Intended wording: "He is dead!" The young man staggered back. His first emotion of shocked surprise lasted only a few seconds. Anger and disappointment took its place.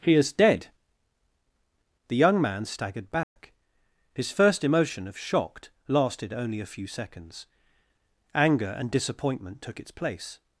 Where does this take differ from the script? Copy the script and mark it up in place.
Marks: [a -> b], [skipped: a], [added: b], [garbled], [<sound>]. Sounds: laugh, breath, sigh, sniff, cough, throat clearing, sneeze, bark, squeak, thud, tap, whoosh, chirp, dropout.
"He is dead!" The young man staggered back. [dropout] His first emotion of shocked [skipped: surprise] lasted only a few seconds. Anger and disappointment took its place.